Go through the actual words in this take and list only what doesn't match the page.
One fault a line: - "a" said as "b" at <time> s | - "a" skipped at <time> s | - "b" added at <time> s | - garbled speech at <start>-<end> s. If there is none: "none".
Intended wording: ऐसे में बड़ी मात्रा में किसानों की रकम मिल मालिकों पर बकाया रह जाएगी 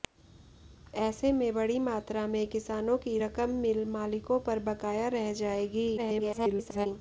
- garbled speech at 6.0-6.9 s